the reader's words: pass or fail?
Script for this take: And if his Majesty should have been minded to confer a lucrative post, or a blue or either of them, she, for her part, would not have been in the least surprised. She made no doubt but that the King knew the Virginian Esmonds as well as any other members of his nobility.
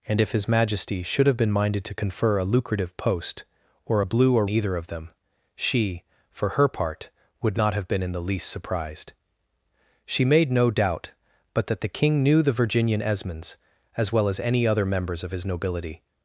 pass